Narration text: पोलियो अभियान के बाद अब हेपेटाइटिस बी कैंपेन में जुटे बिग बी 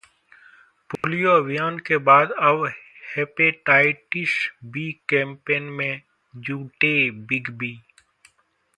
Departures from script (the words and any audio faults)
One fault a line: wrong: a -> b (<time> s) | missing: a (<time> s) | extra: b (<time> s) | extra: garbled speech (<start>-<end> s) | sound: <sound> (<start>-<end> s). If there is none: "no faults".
sound: dropout (1.0-1.0 s)